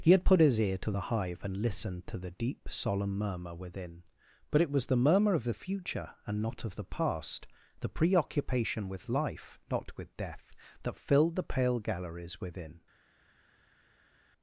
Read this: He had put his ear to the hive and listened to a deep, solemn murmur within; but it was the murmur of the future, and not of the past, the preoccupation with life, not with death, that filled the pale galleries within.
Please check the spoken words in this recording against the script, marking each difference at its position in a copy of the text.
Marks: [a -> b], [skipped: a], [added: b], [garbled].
He had put his ear to the hive and listened to [a -> the] deep, solemn murmur within; but it was the murmur of the future, and not of the past, the preoccupation with life, not with death, that filled the pale galleries within.